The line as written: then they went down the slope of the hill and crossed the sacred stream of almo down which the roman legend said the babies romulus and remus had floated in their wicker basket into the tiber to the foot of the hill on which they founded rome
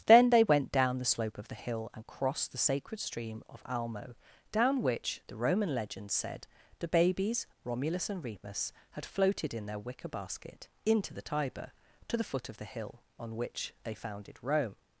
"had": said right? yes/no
yes